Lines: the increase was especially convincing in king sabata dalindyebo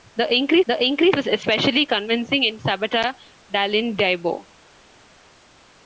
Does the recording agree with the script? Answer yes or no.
no